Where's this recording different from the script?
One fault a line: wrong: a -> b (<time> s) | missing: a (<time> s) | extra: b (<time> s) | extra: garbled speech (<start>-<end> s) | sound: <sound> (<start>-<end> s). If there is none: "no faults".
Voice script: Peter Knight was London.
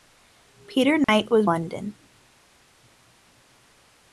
sound: dropout (1.0-1.1 s)